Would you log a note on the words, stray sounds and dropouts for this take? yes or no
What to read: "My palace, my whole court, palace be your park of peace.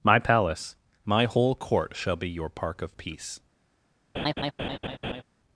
yes